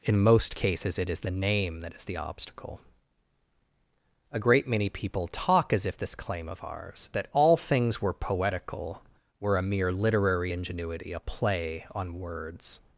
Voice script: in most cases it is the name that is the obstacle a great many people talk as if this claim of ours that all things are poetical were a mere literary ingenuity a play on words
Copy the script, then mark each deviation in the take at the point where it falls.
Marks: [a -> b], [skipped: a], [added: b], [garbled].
in most cases it is the name that is the obstacle a great many people talk as if this claim of ours that all things [are -> were] poetical were a mere literary ingenuity a play on words